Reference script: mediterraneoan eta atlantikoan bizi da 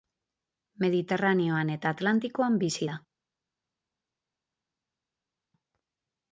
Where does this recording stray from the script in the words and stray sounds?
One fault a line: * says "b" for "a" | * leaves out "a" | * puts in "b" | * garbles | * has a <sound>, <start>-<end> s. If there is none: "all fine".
all fine